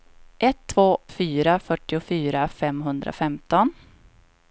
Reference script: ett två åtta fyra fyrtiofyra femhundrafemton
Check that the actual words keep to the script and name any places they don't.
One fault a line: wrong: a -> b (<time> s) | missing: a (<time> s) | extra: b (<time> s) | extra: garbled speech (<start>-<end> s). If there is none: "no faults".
missing: åtta (1.0 s)